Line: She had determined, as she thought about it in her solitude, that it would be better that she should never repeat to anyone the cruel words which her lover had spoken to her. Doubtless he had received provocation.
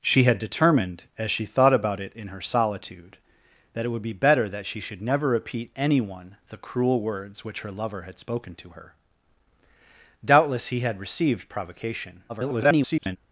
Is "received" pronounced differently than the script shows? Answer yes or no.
no